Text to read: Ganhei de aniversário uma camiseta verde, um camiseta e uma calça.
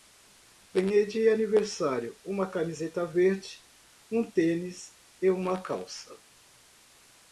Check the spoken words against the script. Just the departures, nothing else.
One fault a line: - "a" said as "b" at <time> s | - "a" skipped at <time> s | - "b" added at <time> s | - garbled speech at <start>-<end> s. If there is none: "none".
- "camiseta" said as "tênis" at 4.3 s